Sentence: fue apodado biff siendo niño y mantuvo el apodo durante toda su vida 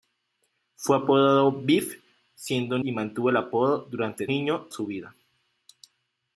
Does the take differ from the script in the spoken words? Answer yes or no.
yes